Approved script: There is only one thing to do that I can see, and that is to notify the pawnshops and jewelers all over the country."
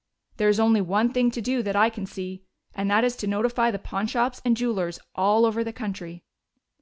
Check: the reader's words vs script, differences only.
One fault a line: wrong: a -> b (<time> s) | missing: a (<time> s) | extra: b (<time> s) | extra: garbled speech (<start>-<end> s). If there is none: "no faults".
no faults